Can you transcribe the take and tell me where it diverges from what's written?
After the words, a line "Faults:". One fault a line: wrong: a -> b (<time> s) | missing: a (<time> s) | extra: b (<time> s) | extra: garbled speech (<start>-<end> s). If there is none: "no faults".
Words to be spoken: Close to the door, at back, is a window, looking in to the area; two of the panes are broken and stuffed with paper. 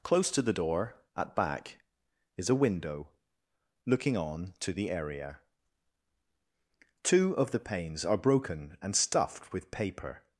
Close to the door, at back, is a window, looking on to the area; two of the panes are broken and stuffed with paper.
Faults:
wrong: in -> on (4.2 s)